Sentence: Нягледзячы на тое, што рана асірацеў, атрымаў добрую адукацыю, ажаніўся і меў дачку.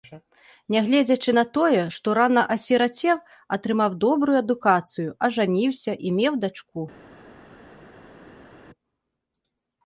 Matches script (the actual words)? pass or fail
pass